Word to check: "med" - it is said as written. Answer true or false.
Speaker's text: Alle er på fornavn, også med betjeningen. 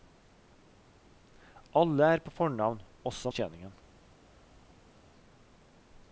false